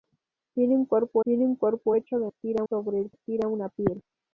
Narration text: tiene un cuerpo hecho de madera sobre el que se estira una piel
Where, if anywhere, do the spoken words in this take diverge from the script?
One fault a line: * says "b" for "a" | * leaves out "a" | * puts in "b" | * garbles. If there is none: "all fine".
* puts in "tiene un cuerpo"
* says "estira" for "madera"
* leaves out "que se"